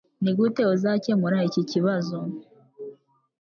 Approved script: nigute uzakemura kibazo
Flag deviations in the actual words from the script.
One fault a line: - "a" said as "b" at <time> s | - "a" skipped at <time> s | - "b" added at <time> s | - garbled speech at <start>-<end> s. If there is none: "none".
- "iki" added at 1.5 s